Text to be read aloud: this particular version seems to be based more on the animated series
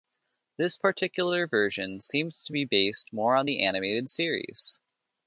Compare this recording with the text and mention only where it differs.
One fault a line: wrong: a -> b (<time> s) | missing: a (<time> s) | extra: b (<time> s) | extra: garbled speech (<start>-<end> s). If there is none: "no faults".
no faults